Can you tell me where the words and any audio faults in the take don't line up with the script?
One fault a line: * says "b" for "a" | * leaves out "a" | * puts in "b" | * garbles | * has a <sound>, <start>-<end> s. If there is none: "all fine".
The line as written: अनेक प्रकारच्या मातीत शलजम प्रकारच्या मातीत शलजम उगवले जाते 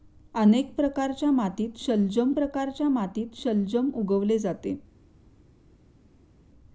all fine